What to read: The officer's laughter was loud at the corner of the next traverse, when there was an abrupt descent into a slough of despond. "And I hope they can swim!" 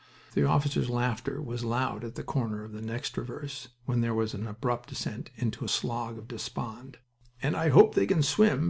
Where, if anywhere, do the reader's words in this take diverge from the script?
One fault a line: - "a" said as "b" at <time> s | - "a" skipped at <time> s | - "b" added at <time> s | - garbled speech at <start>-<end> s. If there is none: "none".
none